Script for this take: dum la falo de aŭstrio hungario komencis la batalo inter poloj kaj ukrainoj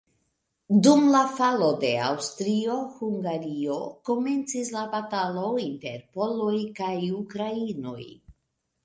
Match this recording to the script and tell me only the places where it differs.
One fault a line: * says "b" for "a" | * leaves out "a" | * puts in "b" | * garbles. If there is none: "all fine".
all fine